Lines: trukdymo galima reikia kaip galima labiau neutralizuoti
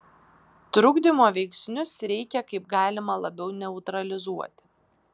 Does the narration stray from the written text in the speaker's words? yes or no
yes